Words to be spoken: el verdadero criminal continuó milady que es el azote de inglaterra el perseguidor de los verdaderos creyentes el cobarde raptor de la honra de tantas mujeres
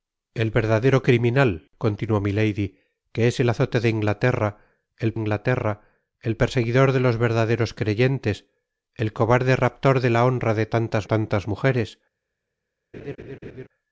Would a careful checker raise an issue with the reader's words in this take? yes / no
yes